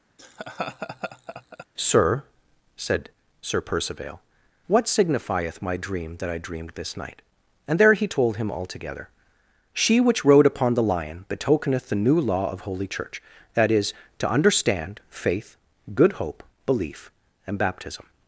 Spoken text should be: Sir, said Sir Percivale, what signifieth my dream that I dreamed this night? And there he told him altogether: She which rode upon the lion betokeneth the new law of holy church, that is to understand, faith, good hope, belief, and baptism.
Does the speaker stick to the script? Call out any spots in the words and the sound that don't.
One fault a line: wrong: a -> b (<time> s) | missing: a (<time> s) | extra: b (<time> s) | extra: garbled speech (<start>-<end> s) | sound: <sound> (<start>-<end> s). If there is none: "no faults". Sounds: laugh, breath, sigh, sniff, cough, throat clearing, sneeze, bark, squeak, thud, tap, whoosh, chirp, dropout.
sound: laugh (0.2-1.7 s)